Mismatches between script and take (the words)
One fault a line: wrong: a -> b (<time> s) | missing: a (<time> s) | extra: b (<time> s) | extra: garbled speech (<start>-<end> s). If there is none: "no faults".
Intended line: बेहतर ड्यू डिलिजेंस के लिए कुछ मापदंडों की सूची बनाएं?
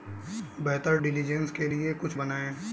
missing: ड्यू (1.0 s)
missing: मापदंडों की सूची (2.2 s)